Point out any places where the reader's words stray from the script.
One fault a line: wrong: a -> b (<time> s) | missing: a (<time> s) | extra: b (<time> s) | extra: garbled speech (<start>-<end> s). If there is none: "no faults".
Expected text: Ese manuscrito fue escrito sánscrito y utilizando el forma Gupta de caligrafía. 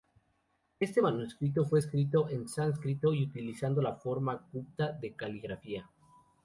wrong: Ese -> Este (0.8 s)
extra: en (2.3 s)
wrong: el -> la (3.8 s)